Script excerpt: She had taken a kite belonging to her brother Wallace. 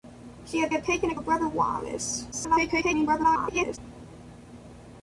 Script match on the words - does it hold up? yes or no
no